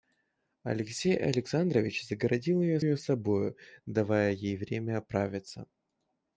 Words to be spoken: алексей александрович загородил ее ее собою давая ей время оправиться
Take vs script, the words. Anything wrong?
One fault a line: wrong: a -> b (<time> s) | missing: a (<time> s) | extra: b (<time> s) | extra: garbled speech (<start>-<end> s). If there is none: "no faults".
no faults